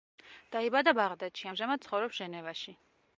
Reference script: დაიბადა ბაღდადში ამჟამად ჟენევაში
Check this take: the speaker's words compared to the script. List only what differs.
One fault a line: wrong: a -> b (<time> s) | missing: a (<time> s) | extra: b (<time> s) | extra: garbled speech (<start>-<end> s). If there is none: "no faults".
extra: ცხოვრობს (1.9 s)